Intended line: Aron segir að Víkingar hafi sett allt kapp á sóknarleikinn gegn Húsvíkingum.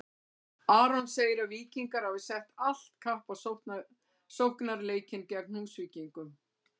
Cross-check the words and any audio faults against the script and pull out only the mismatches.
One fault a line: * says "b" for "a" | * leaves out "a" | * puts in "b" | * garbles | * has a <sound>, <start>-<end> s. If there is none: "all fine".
all fine